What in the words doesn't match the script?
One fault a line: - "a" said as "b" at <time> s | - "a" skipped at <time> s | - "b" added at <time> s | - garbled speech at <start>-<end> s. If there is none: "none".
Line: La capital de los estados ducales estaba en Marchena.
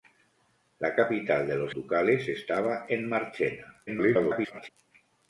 - "estados" skipped at 1.8 s
- garbled speech at 3.9-4.7 s